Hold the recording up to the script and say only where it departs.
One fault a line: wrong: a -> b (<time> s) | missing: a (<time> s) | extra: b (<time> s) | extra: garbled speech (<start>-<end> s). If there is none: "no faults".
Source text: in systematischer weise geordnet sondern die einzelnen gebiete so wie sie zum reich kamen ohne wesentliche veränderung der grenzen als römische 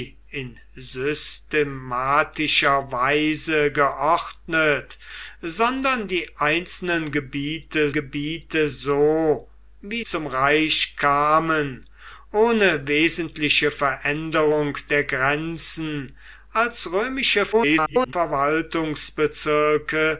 extra: gebiete (7.9 s)
missing: sie (10.0 s)
extra: garbled speech (17.5-18.1 s)